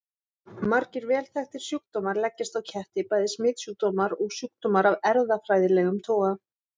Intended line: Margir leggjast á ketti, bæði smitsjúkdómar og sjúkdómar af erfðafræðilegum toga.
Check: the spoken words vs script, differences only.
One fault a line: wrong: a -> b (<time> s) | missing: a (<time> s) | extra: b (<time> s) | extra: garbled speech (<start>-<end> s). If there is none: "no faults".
extra: vel þekktir sjúkdómar (1.1 s)